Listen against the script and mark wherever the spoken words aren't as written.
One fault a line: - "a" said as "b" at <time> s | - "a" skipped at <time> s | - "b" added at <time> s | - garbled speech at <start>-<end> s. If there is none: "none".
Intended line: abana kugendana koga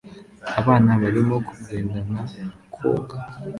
- "barimo" added at 1.0 s